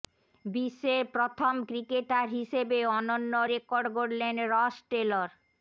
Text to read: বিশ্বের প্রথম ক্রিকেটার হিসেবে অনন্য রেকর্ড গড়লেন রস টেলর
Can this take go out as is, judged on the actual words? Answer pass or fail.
pass